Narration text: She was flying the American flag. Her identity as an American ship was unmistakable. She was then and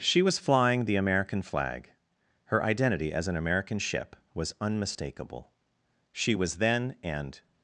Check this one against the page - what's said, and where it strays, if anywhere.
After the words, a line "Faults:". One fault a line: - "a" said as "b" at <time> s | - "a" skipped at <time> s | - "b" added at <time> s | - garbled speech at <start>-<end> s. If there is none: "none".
She was flying the American flag. Her identity as an American ship was unmistakable. She was then and
Faults:
none